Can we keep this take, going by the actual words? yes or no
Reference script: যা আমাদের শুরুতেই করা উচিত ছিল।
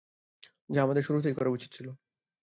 yes